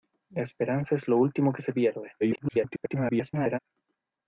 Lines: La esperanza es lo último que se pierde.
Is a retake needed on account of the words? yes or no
yes